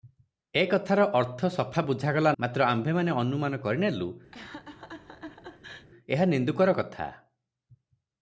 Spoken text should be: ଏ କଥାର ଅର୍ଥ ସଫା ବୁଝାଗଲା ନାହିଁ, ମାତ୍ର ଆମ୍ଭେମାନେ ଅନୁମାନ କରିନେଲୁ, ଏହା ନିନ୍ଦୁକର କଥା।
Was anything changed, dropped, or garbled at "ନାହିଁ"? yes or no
yes